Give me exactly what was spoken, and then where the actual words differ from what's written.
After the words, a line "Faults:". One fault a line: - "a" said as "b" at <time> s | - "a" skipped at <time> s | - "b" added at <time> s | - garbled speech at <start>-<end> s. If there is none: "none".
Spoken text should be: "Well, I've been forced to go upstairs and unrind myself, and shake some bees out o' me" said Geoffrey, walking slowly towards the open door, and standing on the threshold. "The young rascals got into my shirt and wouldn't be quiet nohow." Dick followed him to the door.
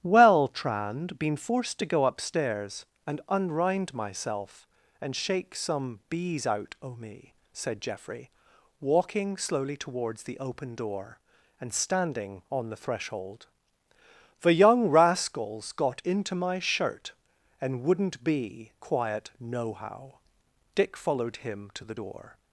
"Well, Trand been forced to go upstairs and unrind myself, and shake some bees out o' me" said Geoffrey, walking slowly towards the open door, and standing on the threshold. "The young rascals got into my shirt and wouldn't be quiet nohow." Dick followed him to the door.
Faults:
- "I've" said as "Trand" at 0.5 s